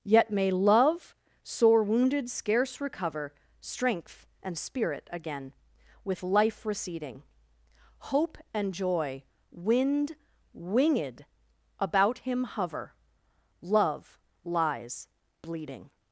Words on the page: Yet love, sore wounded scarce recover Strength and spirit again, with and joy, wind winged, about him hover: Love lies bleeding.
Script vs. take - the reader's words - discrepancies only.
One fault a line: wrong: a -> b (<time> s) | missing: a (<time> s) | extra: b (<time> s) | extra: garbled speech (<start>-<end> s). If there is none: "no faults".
extra: may (0.3 s)
extra: life receding Hope (6.2 s)